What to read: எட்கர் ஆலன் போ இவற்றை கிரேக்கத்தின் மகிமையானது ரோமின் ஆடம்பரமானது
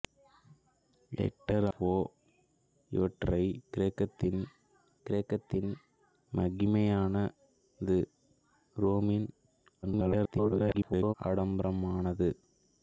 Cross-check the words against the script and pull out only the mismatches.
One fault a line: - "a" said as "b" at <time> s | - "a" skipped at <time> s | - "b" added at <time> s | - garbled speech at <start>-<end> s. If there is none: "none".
- "ஆலன்" skipped at 1.7 s
- "கிரேக்கத்தின்" added at 5.1 s
- garbled speech at 9.8-11.1 s